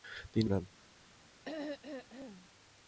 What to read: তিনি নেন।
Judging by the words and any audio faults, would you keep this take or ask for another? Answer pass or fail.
fail